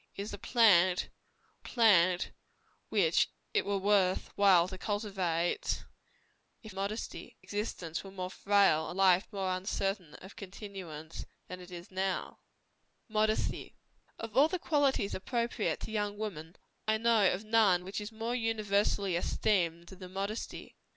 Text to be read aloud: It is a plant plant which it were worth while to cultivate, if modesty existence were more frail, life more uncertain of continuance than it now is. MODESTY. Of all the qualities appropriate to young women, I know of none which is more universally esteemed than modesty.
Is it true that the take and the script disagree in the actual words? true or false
false